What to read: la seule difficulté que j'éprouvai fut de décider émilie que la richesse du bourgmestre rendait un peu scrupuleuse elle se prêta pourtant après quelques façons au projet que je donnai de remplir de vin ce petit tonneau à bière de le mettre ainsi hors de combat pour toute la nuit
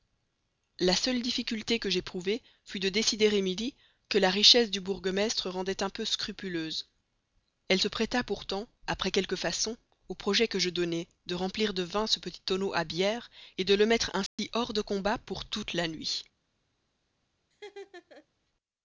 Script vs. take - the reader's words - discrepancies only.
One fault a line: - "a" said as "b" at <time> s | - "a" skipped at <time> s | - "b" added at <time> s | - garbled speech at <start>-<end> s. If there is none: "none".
none